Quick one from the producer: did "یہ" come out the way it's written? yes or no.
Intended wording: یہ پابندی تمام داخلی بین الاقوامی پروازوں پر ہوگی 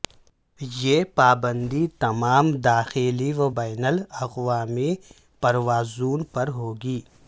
yes